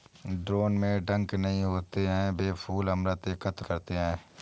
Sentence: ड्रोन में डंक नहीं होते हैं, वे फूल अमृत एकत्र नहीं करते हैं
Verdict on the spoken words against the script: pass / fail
fail